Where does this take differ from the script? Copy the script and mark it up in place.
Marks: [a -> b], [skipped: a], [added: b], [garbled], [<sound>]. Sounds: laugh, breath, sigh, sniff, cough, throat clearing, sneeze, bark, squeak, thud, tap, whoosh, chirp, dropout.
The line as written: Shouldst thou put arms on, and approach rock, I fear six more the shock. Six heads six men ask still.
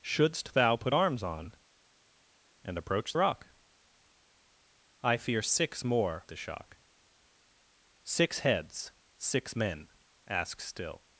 Shouldst thou put arms on, and approach rock, I fear six more the shock. Six heads six men ask still.